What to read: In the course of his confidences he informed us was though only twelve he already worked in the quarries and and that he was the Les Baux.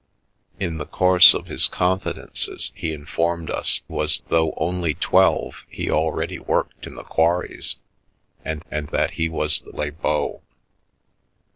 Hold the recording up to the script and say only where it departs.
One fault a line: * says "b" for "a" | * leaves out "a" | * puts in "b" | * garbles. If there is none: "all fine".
all fine